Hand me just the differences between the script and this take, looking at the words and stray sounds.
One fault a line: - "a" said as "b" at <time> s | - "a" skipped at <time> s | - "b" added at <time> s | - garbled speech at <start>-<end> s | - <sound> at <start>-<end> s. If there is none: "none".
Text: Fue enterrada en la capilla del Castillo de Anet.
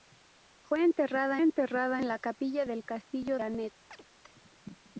- "enterrada" added at 1.4 s
- "de" skipped at 3.4 s
- chirp at 3.9-4.0 s